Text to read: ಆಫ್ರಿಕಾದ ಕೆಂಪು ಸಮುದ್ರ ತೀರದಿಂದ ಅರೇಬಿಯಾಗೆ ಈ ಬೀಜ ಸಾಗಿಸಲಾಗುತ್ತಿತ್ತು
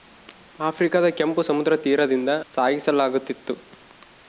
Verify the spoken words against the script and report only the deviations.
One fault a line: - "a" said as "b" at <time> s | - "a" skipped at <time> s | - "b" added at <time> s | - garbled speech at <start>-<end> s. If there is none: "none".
- "ಅರೇಬಿಯಾಗೆ ಈ ಬೀಜ" skipped at 2.3 s